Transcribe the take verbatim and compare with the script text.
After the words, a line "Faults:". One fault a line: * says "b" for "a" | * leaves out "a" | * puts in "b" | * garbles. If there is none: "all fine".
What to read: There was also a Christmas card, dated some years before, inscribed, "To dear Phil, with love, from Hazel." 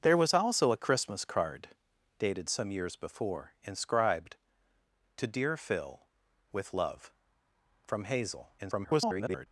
There was also a Christmas card, dated some years before, inscribed, "To dear Phil, with love, from Hazel." [garbled]
Faults:
* garbles